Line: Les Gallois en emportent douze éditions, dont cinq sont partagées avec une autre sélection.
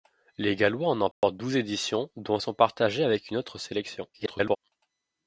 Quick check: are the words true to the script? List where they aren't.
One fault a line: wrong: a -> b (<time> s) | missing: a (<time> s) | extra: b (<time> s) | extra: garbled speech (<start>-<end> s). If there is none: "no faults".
missing: cinq (2.4 s)
extra: garbled speech (4.1-4.6 s)